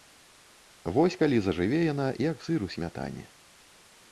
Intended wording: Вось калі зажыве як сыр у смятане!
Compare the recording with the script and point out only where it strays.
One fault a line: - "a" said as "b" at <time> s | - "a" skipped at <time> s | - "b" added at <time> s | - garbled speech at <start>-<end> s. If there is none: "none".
- "яна" added at 1.9 s